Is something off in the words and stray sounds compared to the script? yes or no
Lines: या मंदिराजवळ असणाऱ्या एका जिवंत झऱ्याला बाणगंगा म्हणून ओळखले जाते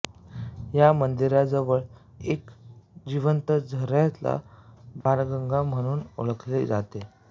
yes